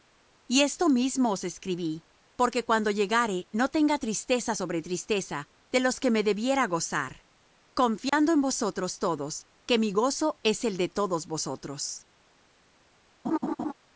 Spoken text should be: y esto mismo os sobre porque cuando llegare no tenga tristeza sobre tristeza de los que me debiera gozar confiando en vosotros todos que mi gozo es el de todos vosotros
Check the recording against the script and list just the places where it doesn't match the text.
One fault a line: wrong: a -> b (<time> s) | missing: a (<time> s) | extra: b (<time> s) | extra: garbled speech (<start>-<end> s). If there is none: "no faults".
wrong: sobre -> escribí (1.4 s)